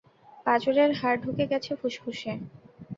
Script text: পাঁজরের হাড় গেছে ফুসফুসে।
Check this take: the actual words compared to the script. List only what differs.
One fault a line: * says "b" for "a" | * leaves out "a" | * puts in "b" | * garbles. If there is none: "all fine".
* puts in "ঢুকে"